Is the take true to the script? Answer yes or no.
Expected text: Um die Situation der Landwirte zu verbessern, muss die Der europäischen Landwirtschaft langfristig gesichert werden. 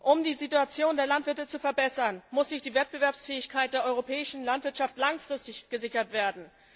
no